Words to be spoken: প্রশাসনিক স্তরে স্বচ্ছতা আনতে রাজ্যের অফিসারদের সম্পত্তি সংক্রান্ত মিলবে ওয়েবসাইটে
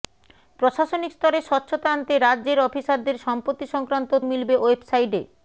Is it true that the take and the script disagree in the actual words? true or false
false